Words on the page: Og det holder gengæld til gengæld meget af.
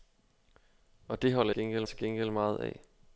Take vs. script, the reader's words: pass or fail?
pass